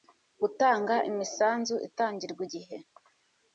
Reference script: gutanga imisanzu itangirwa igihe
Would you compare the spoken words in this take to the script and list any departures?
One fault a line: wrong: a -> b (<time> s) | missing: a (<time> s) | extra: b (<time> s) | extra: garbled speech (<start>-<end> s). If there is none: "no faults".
no faults